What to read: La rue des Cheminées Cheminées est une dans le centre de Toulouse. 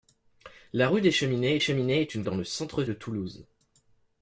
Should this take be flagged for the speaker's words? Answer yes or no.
no